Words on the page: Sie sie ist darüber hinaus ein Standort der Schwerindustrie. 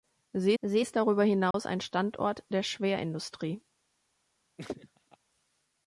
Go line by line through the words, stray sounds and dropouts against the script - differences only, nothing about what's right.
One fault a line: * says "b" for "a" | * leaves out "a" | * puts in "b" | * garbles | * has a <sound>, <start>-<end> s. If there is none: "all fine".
* has a dropout, 1.5-1.5 s
* has a laugh, 4.6-5.2 s